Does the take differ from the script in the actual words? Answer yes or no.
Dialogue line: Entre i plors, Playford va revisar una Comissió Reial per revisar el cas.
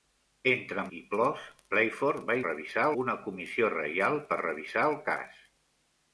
no